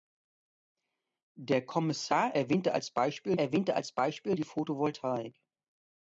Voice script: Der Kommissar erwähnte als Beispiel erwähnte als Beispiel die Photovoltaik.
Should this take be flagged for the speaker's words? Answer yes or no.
no